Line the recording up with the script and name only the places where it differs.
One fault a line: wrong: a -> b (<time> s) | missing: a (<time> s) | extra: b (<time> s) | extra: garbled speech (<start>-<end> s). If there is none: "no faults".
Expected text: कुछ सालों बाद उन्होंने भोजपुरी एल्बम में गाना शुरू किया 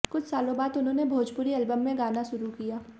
no faults